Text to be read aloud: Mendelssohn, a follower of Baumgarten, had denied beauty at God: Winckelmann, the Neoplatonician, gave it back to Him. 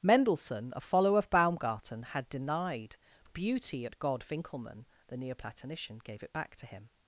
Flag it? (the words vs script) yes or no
no